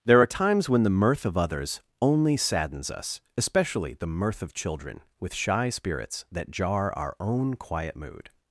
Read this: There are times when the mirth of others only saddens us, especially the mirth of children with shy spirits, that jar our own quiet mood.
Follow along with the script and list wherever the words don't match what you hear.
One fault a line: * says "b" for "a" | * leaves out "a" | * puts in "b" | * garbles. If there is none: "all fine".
all fine